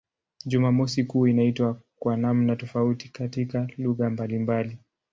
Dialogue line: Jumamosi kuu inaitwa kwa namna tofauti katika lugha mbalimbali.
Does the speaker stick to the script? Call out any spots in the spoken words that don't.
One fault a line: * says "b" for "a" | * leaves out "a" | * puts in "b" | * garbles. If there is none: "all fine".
all fine